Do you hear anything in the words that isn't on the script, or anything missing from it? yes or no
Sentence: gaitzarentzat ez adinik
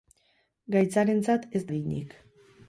no